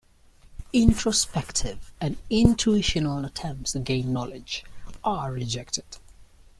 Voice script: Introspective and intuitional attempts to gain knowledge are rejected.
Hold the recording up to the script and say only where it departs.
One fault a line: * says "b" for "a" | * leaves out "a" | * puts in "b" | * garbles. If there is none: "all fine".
all fine